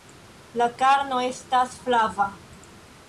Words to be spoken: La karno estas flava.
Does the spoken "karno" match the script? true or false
true